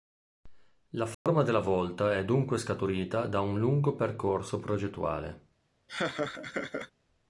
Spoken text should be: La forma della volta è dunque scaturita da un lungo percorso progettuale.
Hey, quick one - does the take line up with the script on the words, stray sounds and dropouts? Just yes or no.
no